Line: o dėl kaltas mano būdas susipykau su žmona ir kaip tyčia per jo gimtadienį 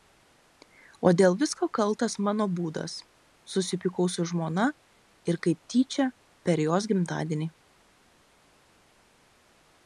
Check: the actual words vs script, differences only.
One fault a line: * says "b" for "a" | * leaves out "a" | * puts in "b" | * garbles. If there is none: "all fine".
* puts in "visko"
* says "jos" for "jo"